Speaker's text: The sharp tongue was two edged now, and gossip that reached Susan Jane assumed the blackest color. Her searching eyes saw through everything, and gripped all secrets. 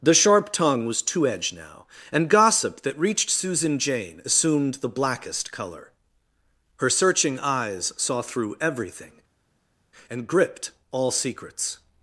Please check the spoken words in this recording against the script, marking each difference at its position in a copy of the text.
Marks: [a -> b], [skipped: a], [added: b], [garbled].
The sharp tongue was two edged now, and gossip that reached Susan Jane assumed the blackest color. Her searching eyes saw through everything, and gripped all secrets.